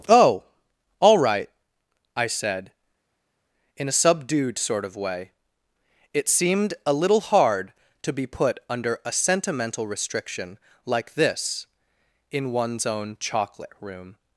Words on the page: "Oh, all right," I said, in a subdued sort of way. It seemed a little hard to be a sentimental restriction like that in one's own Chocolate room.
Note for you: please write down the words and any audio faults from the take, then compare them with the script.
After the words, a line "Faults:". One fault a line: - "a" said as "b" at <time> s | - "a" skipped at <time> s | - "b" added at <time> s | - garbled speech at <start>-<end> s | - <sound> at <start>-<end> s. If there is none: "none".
"Oh, all right," I said, in a subdued sort of way. It seemed a little hard to be put under a sentimental restriction like this in one's own Chocolate room.
Faults:
- "put under" added at 8.3 s
- "that" said as "this" at 11.1 s